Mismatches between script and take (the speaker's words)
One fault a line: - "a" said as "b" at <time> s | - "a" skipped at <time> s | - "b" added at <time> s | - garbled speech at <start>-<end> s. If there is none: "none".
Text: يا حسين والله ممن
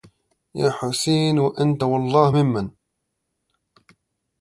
- "وأنت" added at 1.4 s